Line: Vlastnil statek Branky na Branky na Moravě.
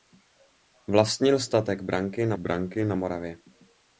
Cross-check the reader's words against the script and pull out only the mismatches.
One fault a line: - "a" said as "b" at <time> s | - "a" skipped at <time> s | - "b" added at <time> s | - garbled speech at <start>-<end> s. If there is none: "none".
none